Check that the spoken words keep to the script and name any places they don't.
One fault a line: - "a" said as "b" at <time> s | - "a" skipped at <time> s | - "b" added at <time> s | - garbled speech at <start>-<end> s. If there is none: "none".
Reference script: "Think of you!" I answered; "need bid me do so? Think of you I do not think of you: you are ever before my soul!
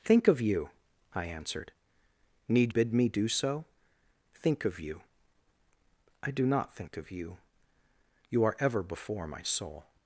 none